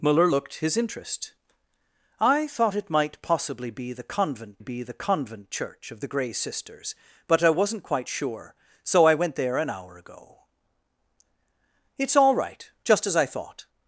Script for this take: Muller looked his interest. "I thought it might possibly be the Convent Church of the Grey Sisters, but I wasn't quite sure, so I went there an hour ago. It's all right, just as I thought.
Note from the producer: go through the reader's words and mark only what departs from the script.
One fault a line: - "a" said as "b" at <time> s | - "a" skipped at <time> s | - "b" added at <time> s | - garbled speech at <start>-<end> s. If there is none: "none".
- "be the Convent" added at 4.6 s